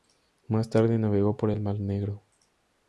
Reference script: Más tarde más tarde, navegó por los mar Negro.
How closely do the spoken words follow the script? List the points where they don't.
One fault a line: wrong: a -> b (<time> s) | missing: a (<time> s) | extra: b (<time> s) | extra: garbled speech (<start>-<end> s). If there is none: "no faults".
missing: más tarde (1.0 s)
wrong: los -> el (1.5 s)